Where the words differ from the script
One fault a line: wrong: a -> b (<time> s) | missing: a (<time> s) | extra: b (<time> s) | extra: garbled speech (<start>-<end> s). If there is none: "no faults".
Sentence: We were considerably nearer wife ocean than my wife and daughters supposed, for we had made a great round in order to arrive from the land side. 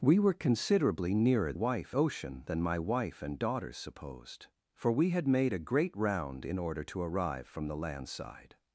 no faults